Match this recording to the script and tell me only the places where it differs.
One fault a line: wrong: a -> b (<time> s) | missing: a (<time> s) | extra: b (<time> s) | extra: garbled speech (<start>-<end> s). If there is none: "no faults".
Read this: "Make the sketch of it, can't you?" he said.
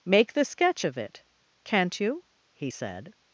no faults